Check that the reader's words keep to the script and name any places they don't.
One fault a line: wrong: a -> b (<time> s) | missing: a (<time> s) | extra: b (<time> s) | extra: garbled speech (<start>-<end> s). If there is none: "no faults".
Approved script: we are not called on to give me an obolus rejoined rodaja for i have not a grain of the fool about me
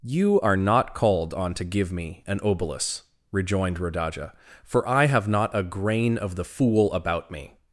wrong: we -> you (0.0 s)